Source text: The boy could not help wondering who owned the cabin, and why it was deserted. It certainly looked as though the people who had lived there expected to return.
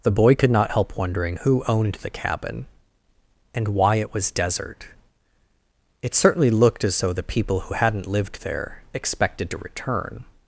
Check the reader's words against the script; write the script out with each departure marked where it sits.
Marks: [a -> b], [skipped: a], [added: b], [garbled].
The boy could not help wondering who owned the cabin, and why it was [deserted. -> desert] It certainly looked as though the people who [had -> hadn't] lived there expected to return.